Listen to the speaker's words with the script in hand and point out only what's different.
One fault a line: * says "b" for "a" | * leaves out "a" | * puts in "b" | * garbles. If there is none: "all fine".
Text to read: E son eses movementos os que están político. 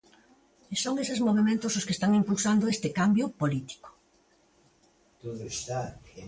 * puts in "impulsando este cambio"